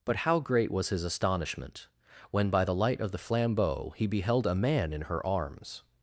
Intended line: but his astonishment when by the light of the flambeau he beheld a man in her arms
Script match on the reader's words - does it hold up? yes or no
no